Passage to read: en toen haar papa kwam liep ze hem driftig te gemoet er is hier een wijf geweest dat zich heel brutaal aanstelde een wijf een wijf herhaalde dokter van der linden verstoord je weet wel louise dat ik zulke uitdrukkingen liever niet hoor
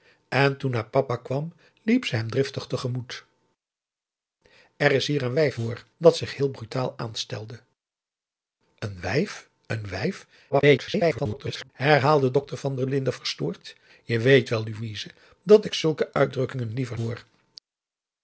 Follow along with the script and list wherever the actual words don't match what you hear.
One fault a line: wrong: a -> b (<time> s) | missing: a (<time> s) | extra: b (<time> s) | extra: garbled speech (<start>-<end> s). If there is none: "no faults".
wrong: geweest -> hoor (5.5 s)
extra: garbled speech (10.5-11.7 s)
missing: niet (17.0 s)